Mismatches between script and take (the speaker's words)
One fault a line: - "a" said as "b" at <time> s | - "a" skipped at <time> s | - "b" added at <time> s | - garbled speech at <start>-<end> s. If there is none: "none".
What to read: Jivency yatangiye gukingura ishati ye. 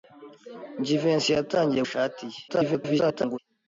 - "gukingura" skipped at 1.8 s
- garbled speech at 2.5-3.4 s